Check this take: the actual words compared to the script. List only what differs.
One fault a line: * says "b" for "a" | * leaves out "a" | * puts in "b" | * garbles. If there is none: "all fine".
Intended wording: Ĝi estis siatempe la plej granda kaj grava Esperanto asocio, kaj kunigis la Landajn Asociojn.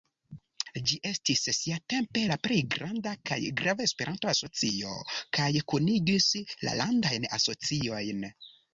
all fine